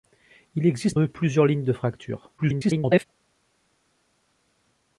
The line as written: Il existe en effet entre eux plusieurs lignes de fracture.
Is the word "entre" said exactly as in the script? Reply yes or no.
no